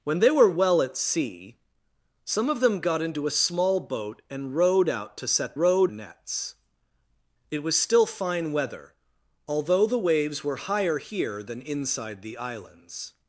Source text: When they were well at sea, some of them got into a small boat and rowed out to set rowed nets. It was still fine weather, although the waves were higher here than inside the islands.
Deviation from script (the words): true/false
false